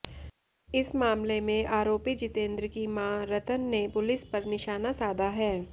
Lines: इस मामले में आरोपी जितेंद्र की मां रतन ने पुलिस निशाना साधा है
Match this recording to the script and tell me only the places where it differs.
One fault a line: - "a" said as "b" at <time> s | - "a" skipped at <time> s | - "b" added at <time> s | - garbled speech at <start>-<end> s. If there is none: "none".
- "पर" added at 4.3 s